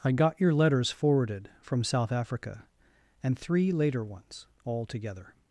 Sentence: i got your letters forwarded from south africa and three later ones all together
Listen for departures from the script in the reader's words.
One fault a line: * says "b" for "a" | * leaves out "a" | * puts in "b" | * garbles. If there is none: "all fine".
all fine